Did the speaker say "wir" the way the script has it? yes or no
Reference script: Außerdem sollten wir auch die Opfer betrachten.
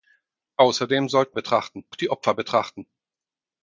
no